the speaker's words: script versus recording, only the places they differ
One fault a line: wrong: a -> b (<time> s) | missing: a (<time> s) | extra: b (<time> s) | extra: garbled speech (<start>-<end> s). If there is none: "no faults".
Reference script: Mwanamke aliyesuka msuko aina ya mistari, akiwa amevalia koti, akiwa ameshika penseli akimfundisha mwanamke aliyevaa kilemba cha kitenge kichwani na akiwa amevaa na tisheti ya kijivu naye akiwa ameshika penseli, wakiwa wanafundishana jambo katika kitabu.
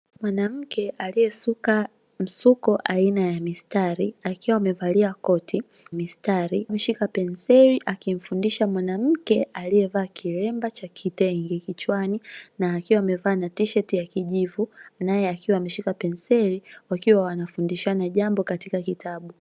wrong: akiwa -> mistari (5.9 s)